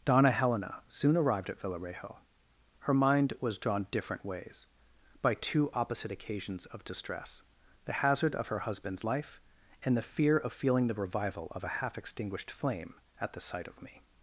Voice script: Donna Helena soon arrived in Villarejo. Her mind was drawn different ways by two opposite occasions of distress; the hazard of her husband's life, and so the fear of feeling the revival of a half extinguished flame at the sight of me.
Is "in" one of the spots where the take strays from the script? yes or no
yes